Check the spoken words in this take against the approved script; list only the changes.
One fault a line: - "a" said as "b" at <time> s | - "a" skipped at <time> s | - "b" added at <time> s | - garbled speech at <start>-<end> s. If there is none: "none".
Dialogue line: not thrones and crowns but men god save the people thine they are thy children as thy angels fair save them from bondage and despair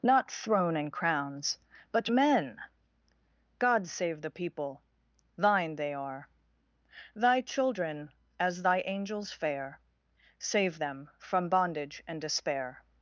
- "thrones" said as "throne" at 0.3 s